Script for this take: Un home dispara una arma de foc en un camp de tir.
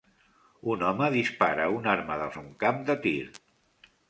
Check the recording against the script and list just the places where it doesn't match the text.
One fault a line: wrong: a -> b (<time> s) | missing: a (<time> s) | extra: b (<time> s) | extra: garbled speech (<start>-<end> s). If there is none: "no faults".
missing: foc (2.3 s)